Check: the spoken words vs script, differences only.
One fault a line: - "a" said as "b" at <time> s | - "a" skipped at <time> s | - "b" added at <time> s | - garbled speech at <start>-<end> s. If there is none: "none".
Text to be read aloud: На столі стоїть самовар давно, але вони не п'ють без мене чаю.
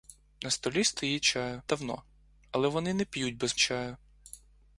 - "самовар" said as "чаю" at 1.2 s
- "мене" skipped at 3.6 s